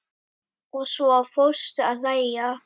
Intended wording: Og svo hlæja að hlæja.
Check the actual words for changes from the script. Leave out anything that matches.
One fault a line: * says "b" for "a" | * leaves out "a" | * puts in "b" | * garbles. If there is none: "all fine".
* says "fórstu" for "hlæja"